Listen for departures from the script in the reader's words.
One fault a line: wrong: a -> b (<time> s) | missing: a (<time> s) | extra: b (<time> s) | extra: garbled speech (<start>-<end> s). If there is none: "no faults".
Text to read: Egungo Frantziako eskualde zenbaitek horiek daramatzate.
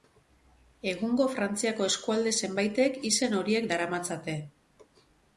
extra: izen (3.1 s)